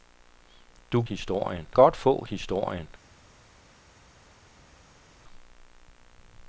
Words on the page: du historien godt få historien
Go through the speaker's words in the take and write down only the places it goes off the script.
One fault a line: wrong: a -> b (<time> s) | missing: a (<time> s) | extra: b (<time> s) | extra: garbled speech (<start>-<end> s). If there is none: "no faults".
no faults